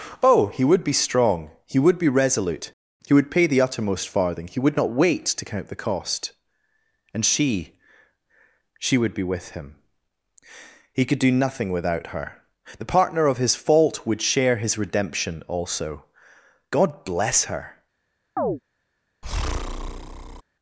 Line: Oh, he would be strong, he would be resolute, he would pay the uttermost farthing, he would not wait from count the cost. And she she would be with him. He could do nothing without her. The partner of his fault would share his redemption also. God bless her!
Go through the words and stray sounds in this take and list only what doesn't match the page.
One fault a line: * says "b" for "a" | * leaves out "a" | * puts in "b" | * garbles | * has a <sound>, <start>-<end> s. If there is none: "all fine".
* says "to" for "from"
* has a chirp, 18.4-18.6 s
* has a breath, 19.2-20.4 s